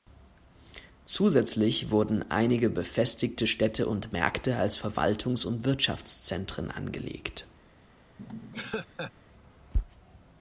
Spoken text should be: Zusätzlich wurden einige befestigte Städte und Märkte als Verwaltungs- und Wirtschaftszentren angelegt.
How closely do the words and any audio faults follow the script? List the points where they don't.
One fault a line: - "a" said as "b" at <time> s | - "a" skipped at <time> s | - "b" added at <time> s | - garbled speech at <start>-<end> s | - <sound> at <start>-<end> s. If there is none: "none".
- laugh at 8.2-9.1 s